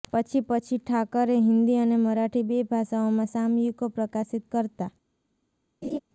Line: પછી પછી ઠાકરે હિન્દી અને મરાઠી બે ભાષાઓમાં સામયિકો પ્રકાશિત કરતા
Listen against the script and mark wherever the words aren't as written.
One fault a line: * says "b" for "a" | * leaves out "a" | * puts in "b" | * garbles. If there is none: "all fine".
all fine